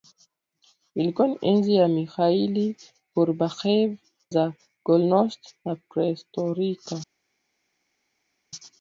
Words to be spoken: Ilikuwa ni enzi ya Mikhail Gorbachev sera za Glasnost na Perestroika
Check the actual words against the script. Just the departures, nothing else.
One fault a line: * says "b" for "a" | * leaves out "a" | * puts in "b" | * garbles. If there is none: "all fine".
* leaves out "sera"